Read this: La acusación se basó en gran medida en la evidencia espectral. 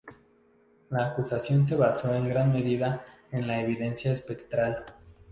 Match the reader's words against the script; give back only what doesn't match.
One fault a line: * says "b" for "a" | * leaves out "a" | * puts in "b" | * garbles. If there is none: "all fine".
all fine